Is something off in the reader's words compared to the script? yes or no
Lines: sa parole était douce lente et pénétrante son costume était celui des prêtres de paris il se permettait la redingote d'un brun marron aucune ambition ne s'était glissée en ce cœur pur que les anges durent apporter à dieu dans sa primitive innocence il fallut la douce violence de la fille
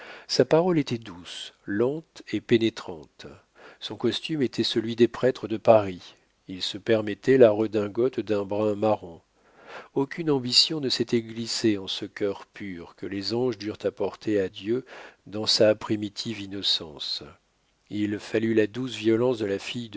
no